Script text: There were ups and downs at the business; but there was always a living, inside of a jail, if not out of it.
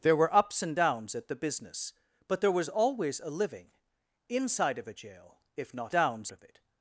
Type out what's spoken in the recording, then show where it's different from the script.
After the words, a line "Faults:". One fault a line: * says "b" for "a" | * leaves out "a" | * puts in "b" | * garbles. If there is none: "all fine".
There were ups and downs at the business; but there was always a living, inside of a jail, if not downs of it.
Faults:
* says "downs" for "out"